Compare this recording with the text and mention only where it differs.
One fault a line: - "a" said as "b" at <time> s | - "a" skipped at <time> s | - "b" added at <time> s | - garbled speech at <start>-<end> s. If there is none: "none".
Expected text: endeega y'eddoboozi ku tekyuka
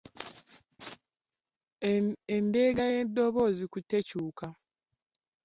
none